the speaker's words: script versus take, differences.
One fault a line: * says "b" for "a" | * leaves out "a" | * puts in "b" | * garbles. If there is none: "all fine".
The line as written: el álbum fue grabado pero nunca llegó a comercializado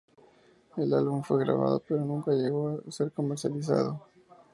* puts in "ser"